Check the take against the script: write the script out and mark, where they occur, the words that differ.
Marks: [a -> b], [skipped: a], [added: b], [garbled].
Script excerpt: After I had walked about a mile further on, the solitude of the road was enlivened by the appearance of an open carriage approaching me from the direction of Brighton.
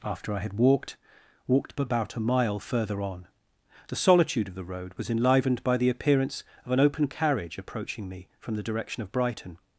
After I had walked [added: walked] about a mile further on, the solitude of the road was enlivened by the appearance of an open carriage approaching me from the direction of Brighton.